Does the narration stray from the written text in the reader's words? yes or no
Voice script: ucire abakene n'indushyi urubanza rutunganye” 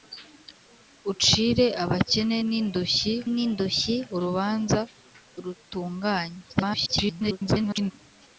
yes